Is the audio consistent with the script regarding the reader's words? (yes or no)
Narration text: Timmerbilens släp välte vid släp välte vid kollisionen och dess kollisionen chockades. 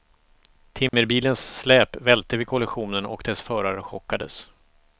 no